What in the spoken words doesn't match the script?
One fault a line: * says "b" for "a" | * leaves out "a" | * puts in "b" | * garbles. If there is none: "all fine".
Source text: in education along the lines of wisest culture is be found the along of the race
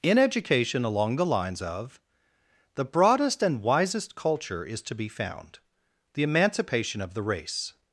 * puts in "the broadest and"
* puts in "to"
* says "emancipation" for "along"